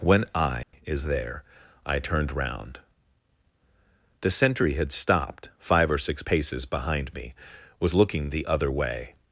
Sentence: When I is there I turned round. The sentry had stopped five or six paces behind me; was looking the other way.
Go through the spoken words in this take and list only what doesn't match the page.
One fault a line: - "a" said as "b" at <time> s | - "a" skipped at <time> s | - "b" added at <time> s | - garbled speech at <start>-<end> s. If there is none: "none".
none